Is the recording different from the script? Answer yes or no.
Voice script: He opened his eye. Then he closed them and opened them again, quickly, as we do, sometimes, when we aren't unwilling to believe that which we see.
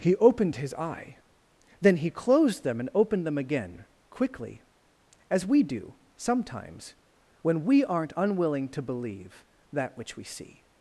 no